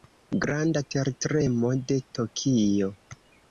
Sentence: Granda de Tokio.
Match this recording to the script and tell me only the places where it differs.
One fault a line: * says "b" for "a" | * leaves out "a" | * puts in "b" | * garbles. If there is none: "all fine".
* puts in "tertremo"